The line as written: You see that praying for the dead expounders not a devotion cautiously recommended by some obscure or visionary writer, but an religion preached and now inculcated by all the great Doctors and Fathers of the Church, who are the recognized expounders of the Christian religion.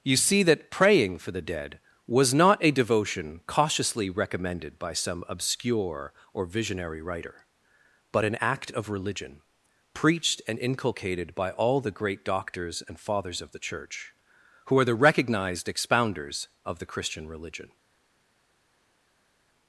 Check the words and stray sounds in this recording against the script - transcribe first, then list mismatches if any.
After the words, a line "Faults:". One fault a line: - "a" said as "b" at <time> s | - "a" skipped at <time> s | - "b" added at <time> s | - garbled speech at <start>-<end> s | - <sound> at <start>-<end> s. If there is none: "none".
You see that praying for the dead was not a devotion cautiously recommended by some obscure or visionary writer, but an act of religion preached and inculcated by all the great Doctors and Fathers of the Church, who are the recognized expounders of the Christian religion.
Faults:
- "expounders" said as "was" at 2.1 s
- "act of" added at 8.4 s
- "now" skipped at 10.6 s